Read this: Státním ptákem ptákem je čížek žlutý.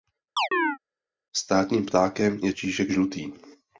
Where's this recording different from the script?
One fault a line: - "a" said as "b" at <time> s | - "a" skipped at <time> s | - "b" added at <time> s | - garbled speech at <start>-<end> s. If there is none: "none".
- "ptákem" skipped at 2.4 s